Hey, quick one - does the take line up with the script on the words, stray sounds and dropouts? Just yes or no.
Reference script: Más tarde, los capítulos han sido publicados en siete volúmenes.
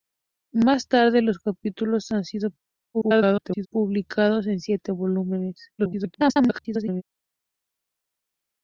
no